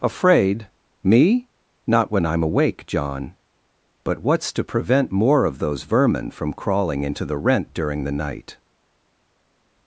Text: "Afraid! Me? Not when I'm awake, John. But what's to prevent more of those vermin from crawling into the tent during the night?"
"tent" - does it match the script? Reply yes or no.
no